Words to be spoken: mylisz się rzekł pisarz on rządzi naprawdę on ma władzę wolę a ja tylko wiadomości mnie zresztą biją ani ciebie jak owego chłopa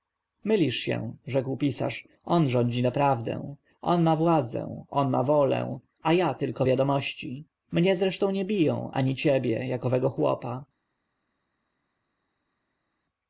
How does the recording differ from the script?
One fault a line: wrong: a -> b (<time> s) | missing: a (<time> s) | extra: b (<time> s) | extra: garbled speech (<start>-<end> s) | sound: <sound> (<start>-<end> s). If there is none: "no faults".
extra: on ma (4.9 s)
extra: nie (8.3 s)